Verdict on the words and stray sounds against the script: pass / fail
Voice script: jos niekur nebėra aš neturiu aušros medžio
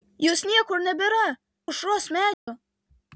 fail